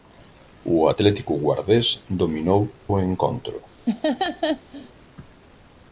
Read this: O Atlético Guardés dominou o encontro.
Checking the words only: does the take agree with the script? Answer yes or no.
yes